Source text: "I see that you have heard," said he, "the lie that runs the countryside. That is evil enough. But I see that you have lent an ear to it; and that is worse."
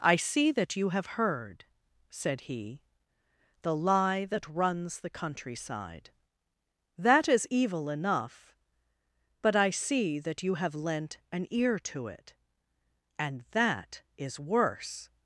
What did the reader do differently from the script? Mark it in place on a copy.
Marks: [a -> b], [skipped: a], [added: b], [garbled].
"I see that you have heard," said he, "the lie that runs the countryside. That is evil enough. But I see that you have lent an ear to it; and that is worse."